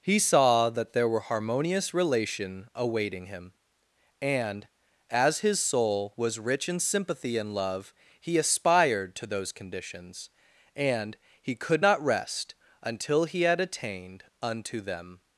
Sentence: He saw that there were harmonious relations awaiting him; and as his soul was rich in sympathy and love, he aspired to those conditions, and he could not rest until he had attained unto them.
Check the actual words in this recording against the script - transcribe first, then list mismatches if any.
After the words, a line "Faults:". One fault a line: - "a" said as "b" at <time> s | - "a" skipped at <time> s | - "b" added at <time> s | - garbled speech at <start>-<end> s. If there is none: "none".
He saw that there were harmonious relation awaiting him; and as his soul was rich in sympathy and love, he aspired to those conditions, and he could not rest until he had attained unto them.
Faults:
- "relations" said as "relation" at 1.9 s